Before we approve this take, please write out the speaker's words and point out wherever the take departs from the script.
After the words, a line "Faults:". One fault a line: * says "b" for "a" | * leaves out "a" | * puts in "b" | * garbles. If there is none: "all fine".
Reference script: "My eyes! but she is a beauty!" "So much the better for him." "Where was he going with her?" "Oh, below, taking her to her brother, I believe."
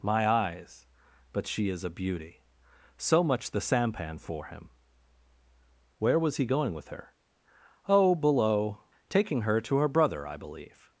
"My eyes! but she is a beauty!" "So much the sampan for him." "Where was he going with her?" "Oh, below, taking her to her brother, I believe."
Faults:
* says "sampan" for "better"